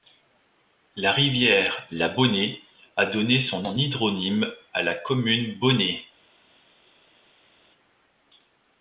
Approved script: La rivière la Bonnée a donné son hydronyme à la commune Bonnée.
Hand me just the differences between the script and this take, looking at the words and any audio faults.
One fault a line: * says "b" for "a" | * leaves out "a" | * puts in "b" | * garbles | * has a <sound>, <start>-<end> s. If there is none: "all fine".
* puts in "son"